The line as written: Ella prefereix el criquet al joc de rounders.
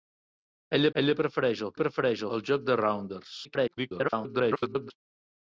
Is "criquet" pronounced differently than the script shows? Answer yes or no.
yes